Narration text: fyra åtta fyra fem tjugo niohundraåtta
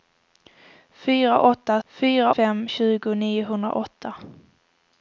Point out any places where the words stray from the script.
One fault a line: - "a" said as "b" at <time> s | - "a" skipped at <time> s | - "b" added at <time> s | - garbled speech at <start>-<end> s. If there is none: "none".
none